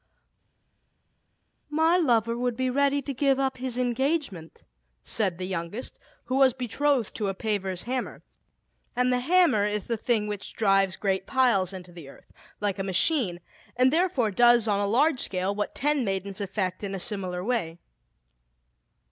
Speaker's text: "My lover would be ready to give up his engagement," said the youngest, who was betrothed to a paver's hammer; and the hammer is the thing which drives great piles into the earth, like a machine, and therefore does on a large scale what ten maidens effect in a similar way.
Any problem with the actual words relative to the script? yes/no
no